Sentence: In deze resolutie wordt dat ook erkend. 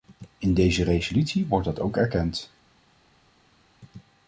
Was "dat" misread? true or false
false